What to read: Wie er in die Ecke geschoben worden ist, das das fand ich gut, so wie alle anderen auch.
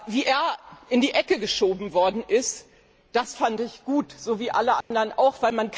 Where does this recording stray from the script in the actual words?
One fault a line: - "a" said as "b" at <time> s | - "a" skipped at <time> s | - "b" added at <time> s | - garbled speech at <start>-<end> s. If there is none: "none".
- "das" skipped at 3.4 s